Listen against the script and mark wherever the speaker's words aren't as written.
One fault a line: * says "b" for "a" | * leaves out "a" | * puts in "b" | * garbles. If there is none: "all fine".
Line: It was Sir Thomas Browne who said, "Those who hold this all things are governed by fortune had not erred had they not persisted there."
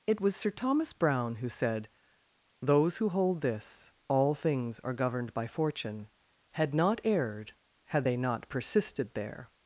all fine